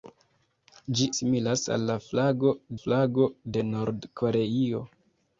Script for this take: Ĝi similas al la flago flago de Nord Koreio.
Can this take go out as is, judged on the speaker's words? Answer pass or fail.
pass